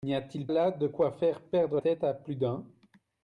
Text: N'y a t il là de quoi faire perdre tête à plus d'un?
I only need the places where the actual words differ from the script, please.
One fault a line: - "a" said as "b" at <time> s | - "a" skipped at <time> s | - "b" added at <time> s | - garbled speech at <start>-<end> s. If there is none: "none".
none